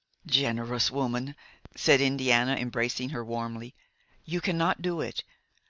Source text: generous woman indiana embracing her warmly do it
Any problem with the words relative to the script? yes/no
yes